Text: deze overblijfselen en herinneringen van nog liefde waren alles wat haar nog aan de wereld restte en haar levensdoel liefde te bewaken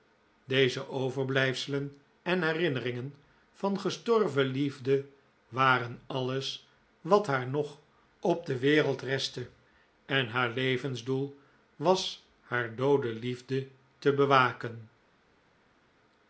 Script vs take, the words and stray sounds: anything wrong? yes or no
yes